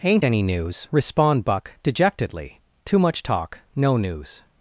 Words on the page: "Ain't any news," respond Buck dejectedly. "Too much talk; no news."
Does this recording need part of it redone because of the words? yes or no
no